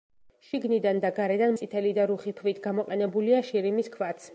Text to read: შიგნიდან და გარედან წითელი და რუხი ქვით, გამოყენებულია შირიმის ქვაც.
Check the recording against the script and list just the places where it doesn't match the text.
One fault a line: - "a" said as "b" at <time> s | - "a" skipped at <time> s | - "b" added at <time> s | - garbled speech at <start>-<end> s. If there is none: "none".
none